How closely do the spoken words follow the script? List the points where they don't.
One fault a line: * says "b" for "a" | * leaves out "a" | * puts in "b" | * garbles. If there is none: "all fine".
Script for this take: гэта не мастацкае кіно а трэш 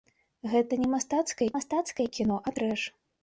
* puts in "мастацкае"